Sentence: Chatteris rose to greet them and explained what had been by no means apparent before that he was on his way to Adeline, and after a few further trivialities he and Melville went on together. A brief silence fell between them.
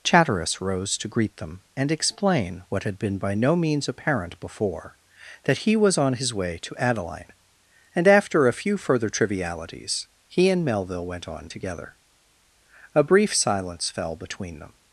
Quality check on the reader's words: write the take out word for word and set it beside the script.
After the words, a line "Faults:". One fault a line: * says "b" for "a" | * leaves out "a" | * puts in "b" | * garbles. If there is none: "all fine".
Chatteris rose to greet them and explain what had been by no means apparent before that he was on his way to Adeline, and after a few further trivialities he and Melville went on together. A brief silence fell between them.
Faults:
* says "explain" for "explained"